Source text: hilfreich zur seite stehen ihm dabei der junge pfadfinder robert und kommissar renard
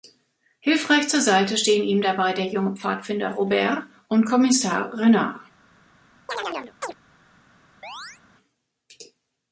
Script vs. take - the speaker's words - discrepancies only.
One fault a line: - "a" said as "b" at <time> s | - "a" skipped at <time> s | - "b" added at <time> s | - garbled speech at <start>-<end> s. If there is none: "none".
none